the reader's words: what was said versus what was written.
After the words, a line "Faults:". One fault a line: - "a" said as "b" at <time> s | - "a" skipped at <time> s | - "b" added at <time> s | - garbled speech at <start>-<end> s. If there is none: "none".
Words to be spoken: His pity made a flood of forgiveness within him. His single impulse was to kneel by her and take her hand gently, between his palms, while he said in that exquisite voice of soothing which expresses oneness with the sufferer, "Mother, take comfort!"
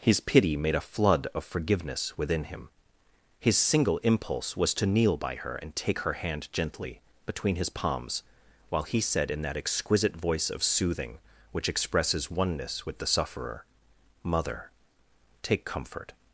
His pity made a flood of forgiveness within him. His single impulse was to kneel by her and take her hand gently, between his palms, while he said in that exquisite voice of soothing which expresses oneness with the sufferer, "Mother, take comfort!"
Faults:
none